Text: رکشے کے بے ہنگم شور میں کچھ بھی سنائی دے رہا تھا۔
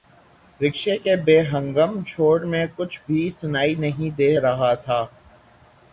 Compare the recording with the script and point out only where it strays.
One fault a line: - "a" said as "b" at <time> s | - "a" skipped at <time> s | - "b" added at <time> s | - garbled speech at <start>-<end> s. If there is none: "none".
- "نہیں" added at 3.8 s